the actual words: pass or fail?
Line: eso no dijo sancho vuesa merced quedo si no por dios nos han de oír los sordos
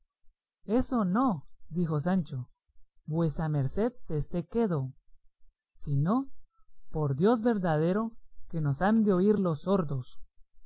fail